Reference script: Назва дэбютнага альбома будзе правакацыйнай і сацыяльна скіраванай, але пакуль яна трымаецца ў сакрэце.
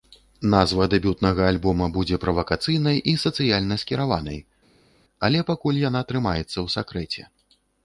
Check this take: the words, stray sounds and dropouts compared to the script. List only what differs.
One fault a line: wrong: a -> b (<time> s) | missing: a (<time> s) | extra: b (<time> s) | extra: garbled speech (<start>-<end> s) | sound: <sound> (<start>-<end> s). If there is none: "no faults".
no faults